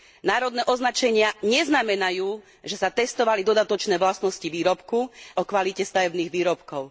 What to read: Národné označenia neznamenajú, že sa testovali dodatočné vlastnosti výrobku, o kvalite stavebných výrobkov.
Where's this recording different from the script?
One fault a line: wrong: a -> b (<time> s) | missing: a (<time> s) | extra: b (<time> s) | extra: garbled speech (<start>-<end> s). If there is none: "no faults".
no faults